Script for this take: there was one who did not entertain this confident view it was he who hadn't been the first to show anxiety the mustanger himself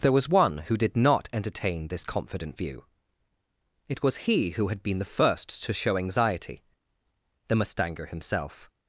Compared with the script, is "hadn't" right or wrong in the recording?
wrong